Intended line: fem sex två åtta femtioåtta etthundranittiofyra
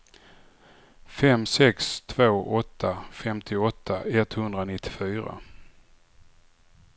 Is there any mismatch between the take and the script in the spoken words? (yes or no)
no